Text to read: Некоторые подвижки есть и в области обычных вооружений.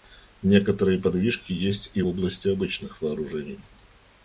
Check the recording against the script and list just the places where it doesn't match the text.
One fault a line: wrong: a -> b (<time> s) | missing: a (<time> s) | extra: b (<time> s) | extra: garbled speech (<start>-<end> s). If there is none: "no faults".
missing: в (2.0 s)